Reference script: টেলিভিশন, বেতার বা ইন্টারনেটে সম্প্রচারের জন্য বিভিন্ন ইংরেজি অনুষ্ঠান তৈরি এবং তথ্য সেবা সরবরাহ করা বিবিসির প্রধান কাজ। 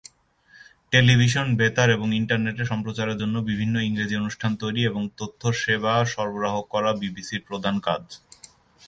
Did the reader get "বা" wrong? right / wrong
wrong